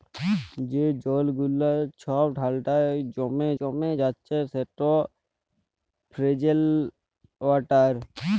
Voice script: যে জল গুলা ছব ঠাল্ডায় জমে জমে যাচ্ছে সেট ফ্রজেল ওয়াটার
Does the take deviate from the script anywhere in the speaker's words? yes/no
no